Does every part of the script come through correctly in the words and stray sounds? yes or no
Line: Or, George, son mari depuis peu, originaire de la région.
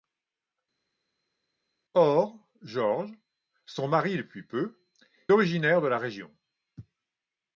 yes